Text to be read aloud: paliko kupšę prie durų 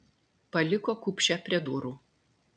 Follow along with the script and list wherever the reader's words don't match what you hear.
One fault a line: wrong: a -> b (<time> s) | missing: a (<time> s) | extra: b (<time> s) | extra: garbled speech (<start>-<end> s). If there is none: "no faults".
no faults